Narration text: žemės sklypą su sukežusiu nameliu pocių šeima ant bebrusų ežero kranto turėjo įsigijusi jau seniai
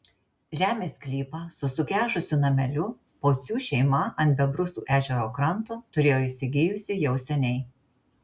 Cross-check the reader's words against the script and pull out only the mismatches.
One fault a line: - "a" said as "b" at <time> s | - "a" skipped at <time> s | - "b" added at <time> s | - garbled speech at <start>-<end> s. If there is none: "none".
none